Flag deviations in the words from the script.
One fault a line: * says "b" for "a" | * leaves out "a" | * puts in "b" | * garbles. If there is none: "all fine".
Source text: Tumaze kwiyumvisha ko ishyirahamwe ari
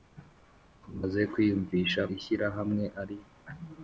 * leaves out "ko"